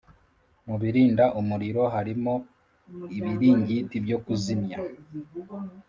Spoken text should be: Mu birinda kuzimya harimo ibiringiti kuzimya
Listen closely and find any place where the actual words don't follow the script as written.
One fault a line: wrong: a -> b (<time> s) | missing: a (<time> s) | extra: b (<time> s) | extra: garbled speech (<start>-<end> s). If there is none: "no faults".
wrong: kuzimya -> umuriro (1.4 s)
extra: byo (4.0 s)